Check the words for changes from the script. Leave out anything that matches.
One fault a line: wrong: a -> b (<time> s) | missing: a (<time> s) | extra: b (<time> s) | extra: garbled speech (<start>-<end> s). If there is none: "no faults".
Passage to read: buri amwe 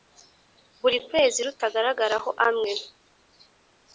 extra: kwezi rutagaragaraho (1.1 s)